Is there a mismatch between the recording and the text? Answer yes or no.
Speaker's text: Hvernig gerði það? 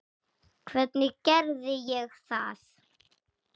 yes